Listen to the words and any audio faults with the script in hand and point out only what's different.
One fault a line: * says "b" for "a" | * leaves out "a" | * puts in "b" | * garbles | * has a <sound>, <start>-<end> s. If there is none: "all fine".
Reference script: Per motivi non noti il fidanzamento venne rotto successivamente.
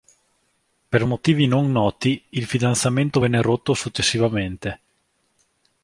all fine